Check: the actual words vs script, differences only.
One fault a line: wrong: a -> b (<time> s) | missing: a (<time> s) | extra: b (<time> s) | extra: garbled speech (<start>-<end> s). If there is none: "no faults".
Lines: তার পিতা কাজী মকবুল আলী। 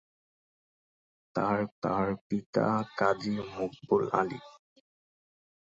extra: তার (1.8 s)